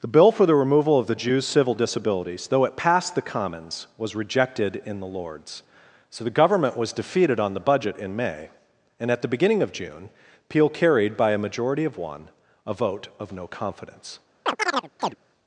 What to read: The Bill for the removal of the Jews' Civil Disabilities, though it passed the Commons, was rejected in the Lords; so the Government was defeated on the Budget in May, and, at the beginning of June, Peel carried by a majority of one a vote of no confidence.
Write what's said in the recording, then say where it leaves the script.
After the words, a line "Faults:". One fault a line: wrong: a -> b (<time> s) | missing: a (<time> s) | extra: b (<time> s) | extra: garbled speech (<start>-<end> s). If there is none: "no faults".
The Bill for the removal of the Jews' Civil Disabilities, though it passed the Commons, was rejected in the Lords; so the Government was defeated on the Budget in May, and, at the beginning of June, Peel carried by a majority of one a vote of no confidence.
Faults:
no faults